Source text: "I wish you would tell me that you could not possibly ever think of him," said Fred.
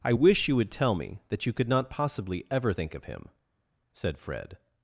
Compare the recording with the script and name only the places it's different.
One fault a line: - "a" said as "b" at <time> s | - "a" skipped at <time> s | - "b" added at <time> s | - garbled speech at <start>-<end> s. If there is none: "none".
none